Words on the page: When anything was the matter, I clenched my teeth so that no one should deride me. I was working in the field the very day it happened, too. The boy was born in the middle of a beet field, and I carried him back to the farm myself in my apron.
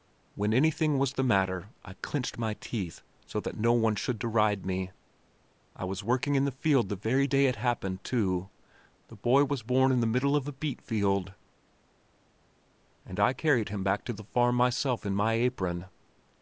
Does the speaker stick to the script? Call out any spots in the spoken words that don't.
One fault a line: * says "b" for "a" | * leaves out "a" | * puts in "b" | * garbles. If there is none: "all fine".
all fine